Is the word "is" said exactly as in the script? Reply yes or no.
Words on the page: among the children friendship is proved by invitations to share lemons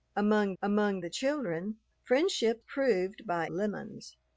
no